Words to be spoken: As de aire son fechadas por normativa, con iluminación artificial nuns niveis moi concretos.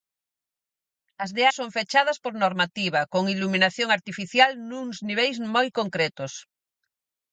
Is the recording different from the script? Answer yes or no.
yes